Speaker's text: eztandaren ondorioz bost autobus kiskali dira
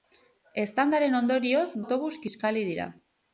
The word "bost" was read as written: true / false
false